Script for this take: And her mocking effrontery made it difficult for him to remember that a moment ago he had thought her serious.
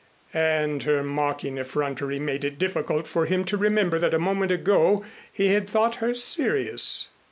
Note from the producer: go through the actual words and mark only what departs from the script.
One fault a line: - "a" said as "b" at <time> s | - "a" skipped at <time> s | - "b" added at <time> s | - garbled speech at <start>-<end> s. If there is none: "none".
none